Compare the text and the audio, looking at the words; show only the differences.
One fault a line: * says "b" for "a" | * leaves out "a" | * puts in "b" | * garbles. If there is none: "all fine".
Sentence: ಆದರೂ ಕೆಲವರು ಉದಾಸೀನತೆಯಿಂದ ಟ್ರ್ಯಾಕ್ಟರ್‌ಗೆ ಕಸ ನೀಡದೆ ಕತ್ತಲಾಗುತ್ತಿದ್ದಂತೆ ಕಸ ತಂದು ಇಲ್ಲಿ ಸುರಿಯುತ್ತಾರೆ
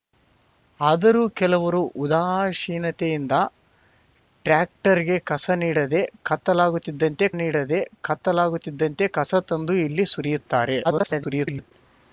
* puts in "ನೀಡದೆ ಕತ್ತಲಾಗುತ್ತಿದ್ದಂತೆ"
* garbles